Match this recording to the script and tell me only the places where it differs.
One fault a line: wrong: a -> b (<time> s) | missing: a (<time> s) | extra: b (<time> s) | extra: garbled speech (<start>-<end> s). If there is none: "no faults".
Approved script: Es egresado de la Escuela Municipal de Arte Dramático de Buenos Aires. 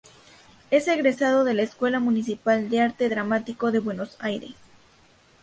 no faults